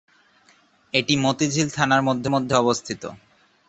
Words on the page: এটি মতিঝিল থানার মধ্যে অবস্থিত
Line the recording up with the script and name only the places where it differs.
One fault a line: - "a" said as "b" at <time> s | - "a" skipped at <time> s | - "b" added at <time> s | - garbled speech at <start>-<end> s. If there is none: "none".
- "মধ্যে" added at 2.3 s